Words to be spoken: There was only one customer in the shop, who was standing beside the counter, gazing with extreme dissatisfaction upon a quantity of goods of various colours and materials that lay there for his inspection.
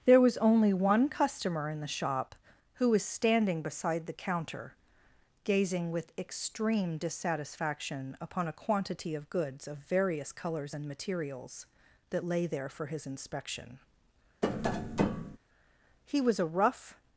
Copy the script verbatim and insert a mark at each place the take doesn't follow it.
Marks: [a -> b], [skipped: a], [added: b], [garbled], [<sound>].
There was only one customer in the shop, who was standing beside the counter, gazing with extreme dissatisfaction upon a quantity of goods of various colours and materials that lay there for his inspection. [tap] [added: He was a rough]